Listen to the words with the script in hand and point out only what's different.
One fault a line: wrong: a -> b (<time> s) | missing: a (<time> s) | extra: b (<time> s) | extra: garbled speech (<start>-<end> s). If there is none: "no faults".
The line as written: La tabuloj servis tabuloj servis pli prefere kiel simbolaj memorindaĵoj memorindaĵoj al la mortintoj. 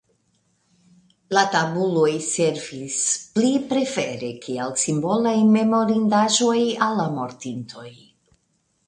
missing: tabuloj servis (3.0 s)
missing: memorindaĵoj (6.6 s)